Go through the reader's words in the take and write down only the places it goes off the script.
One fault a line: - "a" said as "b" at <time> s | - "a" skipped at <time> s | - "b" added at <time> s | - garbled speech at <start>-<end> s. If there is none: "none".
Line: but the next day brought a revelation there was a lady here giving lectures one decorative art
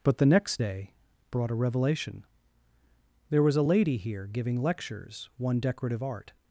none